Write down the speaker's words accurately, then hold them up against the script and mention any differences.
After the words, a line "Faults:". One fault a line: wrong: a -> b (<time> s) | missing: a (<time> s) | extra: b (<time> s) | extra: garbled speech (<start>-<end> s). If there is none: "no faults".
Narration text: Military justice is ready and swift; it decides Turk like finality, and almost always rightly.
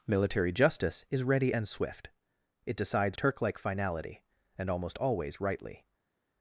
Military justice is ready and swift; it decides Turk like finality, and almost always rightly.
Faults:
no faults